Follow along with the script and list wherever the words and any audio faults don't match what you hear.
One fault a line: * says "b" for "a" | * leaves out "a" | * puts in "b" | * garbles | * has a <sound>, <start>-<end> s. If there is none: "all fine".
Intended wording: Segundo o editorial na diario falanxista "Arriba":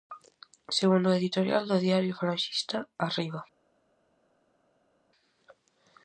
* says "do" for "na"